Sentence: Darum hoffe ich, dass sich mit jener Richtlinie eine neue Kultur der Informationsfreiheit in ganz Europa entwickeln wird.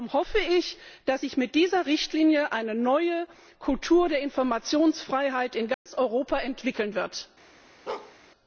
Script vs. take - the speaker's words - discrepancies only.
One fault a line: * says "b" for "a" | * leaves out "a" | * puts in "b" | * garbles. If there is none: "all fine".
* says "dieser" for "jener"